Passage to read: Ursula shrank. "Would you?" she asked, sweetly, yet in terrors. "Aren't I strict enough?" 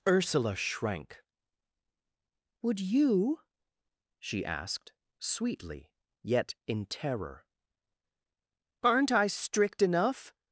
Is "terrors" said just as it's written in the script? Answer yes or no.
no